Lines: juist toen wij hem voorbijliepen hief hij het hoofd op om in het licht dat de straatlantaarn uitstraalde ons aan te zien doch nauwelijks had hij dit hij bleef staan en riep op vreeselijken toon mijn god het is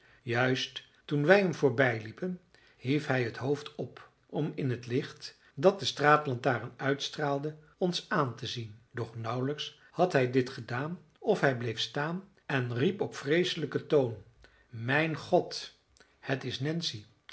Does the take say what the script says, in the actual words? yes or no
no